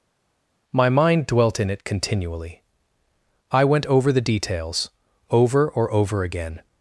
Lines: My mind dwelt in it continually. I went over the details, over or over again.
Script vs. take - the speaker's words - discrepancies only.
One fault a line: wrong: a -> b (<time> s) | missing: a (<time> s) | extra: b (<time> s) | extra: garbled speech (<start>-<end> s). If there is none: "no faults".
no faults